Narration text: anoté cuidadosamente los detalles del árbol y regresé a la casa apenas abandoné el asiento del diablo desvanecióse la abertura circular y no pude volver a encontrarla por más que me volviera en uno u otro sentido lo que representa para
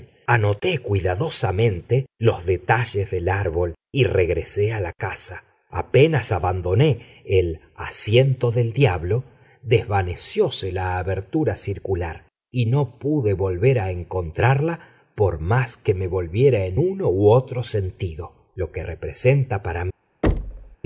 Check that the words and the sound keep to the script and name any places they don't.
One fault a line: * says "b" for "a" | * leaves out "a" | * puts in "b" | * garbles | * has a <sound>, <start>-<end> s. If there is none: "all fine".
* has a thud, 20.2-20.8 s